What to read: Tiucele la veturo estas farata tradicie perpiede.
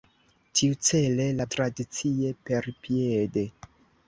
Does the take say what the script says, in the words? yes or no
no